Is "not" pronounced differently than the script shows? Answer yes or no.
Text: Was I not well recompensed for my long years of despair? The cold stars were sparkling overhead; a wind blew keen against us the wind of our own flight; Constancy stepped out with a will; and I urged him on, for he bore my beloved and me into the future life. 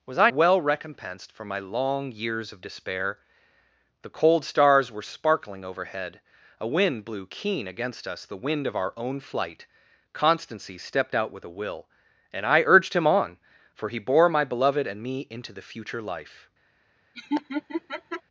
yes